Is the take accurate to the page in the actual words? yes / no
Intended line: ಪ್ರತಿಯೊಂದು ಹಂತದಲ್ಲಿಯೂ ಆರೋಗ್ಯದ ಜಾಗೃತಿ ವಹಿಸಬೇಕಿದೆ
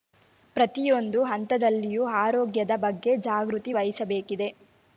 no